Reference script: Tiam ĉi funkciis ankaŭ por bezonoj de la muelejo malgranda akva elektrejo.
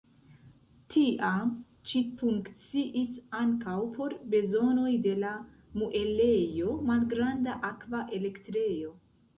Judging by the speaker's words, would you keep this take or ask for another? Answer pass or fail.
pass